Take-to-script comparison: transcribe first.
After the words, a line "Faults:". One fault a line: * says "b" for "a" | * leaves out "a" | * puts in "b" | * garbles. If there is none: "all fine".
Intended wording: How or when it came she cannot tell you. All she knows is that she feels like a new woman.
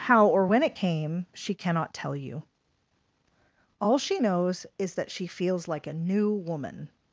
How or when it came she cannot tell you. All she knows is that she feels like a new woman.
Faults:
all fine